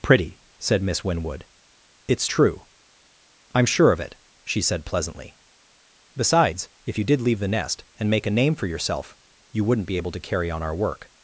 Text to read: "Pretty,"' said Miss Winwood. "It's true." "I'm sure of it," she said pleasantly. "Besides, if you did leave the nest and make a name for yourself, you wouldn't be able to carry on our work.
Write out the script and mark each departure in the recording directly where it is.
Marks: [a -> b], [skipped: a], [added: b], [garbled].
"Pretty,"' said Miss Winwood. "It's true." "I'm sure of it," she said pleasantly. "Besides, if you did leave the nest and make a name for yourself, you wouldn't be able to carry on our work.